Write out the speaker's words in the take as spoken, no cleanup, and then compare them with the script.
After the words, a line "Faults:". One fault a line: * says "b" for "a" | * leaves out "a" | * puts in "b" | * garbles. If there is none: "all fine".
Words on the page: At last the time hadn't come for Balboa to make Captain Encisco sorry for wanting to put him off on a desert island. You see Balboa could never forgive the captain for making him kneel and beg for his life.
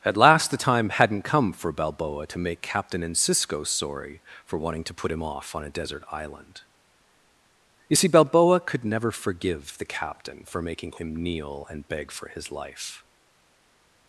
At last the time hadn't come for Balboa to make Captain Encisco sorry for wanting to put him off on a desert island. You see Balboa could never forgive the captain for making him kneel and beg for his life.
Faults:
all fine